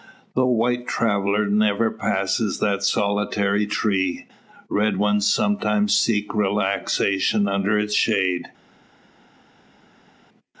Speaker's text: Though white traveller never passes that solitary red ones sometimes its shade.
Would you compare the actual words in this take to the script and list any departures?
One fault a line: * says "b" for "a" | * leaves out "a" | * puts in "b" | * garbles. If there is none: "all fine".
* puts in "tree"
* puts in "seek relaxation under"